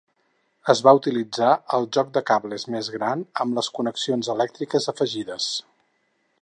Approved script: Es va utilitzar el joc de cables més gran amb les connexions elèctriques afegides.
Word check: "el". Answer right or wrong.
right